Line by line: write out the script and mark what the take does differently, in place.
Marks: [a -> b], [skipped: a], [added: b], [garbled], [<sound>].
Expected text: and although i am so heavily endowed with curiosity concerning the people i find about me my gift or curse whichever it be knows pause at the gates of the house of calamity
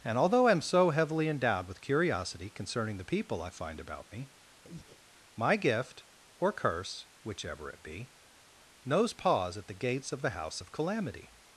and although i am so heavily endowed with curiosity concerning the people i find about me [breath] my gift or curse whichever it be knows pause at the gates of the house of calamity